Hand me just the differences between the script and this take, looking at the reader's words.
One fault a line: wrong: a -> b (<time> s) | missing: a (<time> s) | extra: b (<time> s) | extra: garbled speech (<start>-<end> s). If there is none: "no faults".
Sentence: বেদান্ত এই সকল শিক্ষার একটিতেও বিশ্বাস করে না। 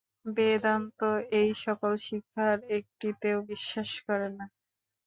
no faults